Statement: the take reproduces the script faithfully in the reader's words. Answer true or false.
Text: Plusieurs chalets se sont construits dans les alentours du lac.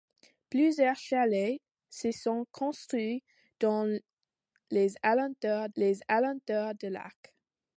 false